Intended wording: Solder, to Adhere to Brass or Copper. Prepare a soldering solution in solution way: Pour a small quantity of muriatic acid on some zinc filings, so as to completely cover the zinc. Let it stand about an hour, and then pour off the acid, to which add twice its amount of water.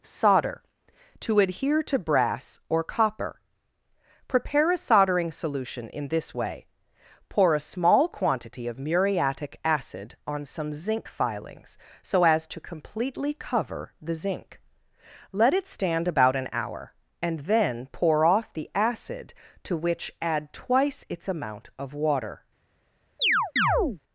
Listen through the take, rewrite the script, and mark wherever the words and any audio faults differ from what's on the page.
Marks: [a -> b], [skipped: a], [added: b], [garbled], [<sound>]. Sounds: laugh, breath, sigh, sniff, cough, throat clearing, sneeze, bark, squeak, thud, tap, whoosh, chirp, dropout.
Solder, to Adhere to Brass or Copper. Prepare a soldering solution in [solution -> this] way: Pour a small quantity of muriatic acid on some zinc filings, so as to completely cover the zinc. Let it stand about an hour, and then pour off the acid, to which add twice its amount of water. [chirp]